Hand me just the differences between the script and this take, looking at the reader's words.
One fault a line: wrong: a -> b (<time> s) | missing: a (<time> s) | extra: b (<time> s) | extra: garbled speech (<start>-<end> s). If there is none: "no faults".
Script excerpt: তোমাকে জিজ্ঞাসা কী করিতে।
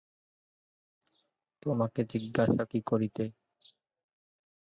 no faults